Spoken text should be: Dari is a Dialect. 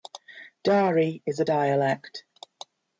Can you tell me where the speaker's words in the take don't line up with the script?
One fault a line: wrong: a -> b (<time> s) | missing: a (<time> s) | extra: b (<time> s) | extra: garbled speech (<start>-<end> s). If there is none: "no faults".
no faults